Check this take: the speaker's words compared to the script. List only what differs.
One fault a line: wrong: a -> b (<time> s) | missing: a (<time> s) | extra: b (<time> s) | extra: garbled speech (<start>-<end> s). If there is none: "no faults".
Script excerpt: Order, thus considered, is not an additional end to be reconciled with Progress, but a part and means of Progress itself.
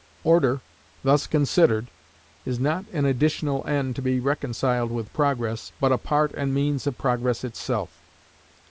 no faults